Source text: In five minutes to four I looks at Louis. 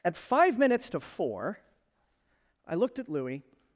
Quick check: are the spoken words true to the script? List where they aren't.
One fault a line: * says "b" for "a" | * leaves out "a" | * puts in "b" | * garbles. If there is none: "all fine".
* says "At" for "In"
* says "looked" for "looks"